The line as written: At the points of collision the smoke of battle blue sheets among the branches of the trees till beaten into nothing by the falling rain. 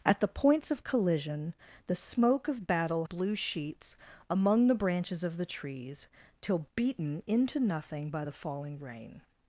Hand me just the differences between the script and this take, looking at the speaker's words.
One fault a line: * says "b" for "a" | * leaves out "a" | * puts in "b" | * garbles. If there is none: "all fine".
all fine